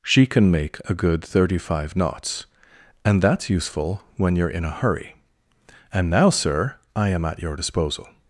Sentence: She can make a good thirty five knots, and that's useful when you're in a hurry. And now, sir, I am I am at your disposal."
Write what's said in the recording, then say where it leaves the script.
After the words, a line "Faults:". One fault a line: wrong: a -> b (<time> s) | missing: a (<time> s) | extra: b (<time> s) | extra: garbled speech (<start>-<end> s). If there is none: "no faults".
She can make a good thirty five knots, and that's useful when you're in a hurry. And now, sir, I am at your disposal."
Faults:
missing: I am (7.2 s)